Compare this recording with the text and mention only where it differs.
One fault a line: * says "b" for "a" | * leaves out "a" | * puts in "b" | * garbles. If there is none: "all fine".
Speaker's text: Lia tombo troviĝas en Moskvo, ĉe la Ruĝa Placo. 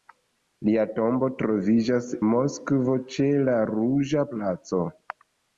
* leaves out "en"